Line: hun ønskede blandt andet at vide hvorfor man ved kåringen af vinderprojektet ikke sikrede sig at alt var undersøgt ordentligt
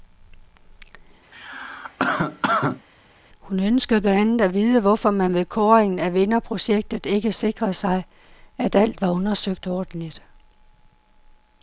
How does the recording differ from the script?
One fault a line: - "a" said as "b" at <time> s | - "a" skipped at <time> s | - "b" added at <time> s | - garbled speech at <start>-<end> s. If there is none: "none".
none